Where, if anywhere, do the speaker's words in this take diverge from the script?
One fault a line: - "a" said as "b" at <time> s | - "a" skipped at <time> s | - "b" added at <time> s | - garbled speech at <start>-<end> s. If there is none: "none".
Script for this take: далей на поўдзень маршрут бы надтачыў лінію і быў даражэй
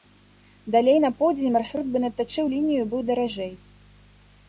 none